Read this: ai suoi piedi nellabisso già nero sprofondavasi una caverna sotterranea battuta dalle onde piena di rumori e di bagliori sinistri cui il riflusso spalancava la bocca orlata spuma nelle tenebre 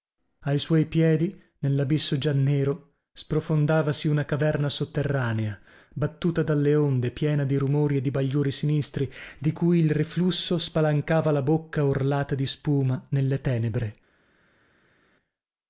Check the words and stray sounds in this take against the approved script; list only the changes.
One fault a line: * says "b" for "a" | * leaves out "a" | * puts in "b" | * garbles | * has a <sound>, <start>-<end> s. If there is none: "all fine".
* puts in "di"
* puts in "di"